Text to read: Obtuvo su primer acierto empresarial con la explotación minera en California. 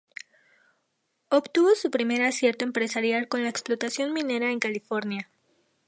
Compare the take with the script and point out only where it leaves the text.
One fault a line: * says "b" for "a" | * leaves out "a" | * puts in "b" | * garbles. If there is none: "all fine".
all fine